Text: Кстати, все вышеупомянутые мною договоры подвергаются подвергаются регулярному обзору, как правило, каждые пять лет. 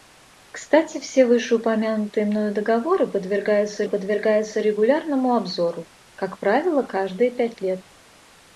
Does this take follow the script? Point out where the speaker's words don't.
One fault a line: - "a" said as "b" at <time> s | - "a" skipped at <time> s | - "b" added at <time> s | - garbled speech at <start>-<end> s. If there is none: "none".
none